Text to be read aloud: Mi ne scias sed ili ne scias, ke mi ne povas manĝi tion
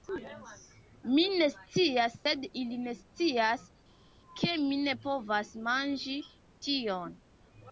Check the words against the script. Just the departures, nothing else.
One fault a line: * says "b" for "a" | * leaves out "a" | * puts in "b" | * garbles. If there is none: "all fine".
all fine